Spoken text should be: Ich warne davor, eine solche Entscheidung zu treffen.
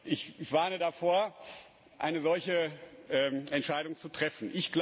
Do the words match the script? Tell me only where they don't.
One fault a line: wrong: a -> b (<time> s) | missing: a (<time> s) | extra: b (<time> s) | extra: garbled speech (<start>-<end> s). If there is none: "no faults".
no faults